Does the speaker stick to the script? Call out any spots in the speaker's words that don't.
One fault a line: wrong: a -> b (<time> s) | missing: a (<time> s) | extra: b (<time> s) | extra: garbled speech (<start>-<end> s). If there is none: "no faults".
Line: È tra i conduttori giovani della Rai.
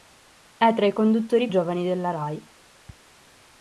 no faults